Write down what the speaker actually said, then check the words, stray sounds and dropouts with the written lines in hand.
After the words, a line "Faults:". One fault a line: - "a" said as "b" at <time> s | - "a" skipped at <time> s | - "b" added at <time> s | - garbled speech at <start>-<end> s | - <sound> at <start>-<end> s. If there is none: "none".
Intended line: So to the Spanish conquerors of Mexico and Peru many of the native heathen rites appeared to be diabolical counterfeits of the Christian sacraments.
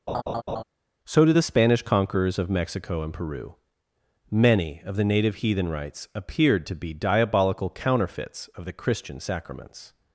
So did the Spanish conquerors of Mexico and Peru many of the native heathen rites appeared to be diabolical counterfeits of the Christian sacraments.
Faults:
- laugh at 0.1-0.6 s
- "to" said as "did" at 1.2 s